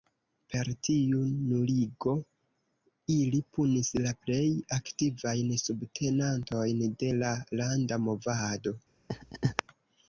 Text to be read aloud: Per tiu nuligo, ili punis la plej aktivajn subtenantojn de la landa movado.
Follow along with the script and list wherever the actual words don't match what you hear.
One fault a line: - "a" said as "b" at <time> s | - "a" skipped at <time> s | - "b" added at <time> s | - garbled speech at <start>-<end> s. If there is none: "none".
none